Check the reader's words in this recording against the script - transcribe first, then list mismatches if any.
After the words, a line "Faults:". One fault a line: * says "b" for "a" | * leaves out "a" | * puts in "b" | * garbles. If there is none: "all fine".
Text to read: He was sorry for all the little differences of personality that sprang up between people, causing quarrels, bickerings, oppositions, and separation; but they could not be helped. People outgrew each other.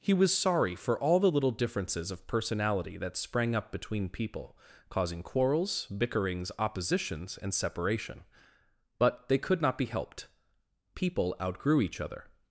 He was sorry for all the little differences of personality that sprang up between people, causing quarrels, bickerings, oppositions, and separation; but they could not be helped. People outgrew each other.
Faults:
all fine